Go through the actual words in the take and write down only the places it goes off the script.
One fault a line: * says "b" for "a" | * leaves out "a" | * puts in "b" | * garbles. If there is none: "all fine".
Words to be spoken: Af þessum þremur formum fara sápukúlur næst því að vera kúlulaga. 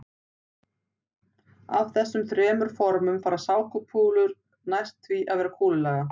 all fine